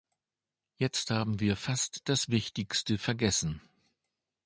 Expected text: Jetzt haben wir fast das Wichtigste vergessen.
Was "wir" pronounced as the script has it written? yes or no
yes